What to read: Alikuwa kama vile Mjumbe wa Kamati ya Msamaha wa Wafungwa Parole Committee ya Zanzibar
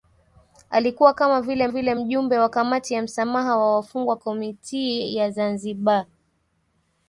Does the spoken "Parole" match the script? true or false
false